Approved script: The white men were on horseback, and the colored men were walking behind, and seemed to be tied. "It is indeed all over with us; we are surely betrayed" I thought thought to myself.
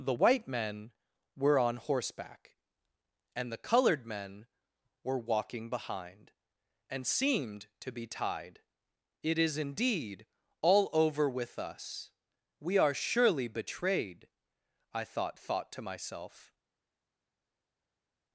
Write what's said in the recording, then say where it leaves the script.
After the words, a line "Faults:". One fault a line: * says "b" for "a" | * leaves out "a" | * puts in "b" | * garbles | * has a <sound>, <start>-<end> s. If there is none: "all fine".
The white men were on horseback, and the colored men were walking behind, and seemed to be tied. "It is indeed all over with us; we are surely betrayed" I thought thought to myself.
Faults:
all fine